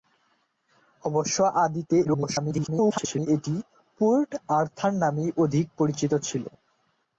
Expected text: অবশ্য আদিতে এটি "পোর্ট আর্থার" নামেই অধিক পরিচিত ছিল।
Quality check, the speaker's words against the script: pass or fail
fail